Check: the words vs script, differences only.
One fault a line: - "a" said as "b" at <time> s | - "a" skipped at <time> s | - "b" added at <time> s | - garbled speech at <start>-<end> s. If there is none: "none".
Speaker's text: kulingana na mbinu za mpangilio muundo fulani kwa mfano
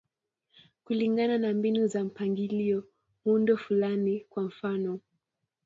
none